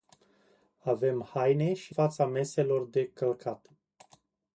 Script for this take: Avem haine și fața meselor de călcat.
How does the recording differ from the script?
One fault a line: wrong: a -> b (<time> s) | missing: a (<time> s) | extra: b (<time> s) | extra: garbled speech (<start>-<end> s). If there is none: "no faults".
no faults